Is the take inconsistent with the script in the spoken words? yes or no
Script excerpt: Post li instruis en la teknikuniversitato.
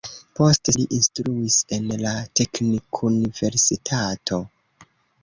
no